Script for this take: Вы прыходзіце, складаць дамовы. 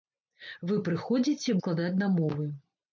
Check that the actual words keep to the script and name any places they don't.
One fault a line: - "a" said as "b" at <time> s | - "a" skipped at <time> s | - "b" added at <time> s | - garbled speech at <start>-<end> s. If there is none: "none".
none